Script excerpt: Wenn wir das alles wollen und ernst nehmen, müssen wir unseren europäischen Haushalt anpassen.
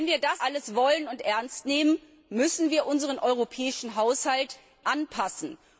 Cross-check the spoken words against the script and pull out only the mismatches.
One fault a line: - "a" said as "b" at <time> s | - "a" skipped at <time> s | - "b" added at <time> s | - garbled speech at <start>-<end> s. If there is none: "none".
none